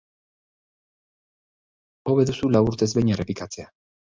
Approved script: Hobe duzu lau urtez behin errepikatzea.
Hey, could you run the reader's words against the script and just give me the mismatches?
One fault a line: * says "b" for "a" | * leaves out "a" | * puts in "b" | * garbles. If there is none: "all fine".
all fine